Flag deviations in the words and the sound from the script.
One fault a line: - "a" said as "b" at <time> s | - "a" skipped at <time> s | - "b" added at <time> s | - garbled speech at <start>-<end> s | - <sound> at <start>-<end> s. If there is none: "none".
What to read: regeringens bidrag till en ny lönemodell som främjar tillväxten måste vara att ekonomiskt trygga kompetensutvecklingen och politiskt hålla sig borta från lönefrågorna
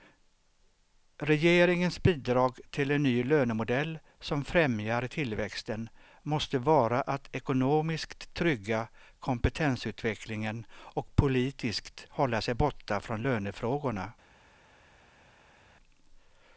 none